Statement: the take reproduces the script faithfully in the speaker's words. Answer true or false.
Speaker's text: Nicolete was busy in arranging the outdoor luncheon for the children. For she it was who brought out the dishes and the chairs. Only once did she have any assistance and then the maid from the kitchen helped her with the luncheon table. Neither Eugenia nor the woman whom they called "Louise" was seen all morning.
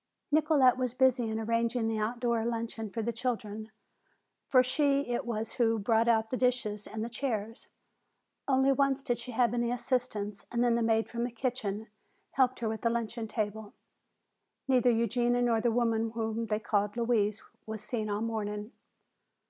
true